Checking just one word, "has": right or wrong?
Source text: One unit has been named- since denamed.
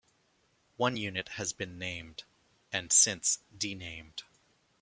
right